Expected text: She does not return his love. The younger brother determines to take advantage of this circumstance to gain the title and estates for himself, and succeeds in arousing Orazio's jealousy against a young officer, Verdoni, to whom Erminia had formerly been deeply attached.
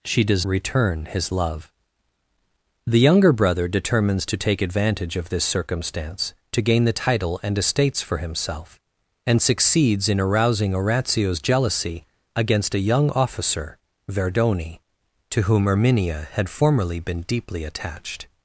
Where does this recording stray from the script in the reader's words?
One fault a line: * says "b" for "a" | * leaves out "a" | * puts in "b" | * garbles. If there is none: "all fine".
* leaves out "not"